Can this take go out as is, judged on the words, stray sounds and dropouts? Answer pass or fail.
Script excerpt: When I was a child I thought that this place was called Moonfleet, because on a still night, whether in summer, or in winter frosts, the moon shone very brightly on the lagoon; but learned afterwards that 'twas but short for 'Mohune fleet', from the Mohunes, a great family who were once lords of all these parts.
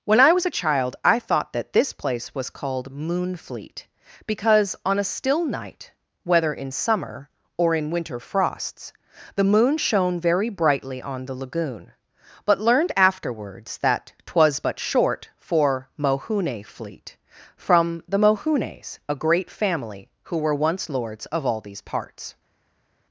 pass